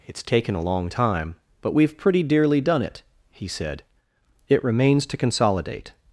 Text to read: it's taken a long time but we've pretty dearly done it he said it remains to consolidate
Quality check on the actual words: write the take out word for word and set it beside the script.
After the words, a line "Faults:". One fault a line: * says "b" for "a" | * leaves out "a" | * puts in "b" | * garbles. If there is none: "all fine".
it's taken a long time but we've pretty dearly done it he said it remains to consolidate
Faults:
all fine